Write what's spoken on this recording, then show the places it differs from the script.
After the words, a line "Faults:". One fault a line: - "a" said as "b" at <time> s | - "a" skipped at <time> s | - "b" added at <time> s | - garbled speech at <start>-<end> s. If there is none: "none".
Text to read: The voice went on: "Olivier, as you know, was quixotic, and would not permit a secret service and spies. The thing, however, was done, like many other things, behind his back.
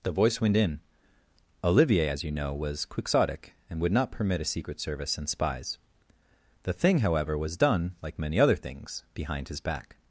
The voice went in: "Olivier, as you know, was quixotic, and would not permit a secret service and spies. The thing, however, was done, like many other things, behind his back.
Faults:
- "on" said as "in" at 0.6 s